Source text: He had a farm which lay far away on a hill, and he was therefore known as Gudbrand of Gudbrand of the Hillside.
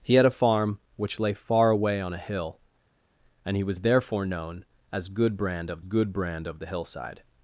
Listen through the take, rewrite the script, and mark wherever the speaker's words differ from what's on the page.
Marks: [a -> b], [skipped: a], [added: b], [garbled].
He had a farm which lay far away on a hill, and he was therefore known as Gudbrand of Gudbrand of the Hillside.